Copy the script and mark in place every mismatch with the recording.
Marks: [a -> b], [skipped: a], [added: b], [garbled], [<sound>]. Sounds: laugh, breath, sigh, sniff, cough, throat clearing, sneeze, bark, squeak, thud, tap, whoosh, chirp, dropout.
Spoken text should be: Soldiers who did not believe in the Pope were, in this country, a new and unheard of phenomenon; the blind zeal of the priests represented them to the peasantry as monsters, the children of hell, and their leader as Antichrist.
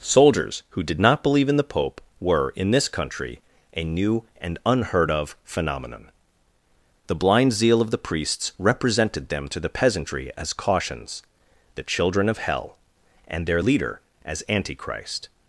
Soldiers who did not believe in the Pope were, in this country, a new and unheard of phenomenon; the blind zeal of the priests represented them to the peasantry as [monsters, -> cautions] the children of hell, and their leader as Antichrist.